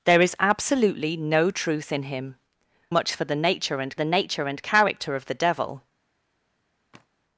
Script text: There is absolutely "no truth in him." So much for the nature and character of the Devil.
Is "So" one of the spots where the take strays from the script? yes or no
yes